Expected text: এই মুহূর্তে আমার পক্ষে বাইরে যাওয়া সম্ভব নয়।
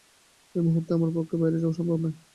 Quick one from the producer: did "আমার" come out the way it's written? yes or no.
yes